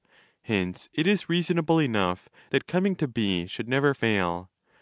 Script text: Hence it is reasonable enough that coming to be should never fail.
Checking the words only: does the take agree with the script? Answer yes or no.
yes